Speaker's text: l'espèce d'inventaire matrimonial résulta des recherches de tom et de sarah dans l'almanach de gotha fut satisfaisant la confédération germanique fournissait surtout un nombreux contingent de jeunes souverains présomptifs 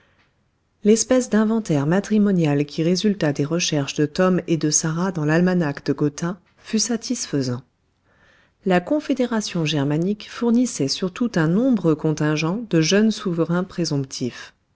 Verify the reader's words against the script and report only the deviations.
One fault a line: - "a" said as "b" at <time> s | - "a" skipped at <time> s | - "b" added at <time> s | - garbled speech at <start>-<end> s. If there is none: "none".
- "qui" added at 2.6 s